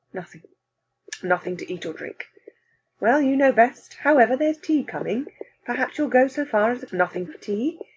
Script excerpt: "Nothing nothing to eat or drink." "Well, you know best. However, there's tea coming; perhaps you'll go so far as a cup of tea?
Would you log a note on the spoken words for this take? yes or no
yes